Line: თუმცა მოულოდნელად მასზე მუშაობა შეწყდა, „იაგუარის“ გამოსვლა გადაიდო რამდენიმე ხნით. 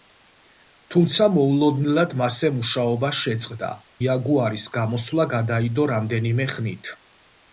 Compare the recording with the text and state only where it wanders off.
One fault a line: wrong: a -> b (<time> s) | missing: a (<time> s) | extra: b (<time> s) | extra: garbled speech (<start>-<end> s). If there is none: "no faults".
no faults